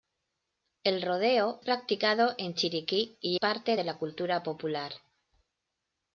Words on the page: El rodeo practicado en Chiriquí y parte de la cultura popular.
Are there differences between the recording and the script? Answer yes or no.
no